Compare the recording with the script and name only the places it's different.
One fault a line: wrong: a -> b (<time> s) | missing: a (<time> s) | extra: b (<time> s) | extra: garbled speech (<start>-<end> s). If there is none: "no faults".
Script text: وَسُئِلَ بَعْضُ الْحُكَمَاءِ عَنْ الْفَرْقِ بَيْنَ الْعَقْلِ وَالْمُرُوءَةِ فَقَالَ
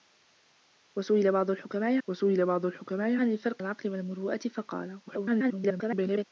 extra: وَسُئِلَ بَعْضُ الْحُكَمَاءِ (2.1 s)
missing: بَيْنَ (3.6 s)
extra: garbled speech (5.1-6.2 s)